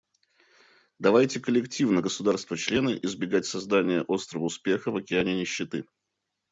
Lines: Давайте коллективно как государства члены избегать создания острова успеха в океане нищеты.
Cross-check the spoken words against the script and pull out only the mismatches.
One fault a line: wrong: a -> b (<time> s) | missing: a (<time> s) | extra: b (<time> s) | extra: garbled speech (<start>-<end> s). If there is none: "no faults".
missing: как (2.0 s)